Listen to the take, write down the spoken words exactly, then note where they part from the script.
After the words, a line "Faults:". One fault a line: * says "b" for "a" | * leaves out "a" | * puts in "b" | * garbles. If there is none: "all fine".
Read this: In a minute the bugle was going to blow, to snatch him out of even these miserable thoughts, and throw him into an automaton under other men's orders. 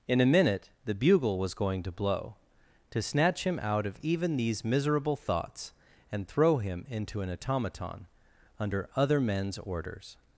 In a minute the bugle was going to blow, to snatch him out of even these miserable thoughts, and throw him into an automaton under other men's orders.
Faults:
all fine